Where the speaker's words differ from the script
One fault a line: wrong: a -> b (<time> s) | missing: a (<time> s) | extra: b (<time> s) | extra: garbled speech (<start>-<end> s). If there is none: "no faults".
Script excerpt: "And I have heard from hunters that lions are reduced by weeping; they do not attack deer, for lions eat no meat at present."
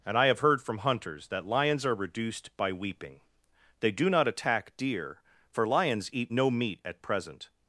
no faults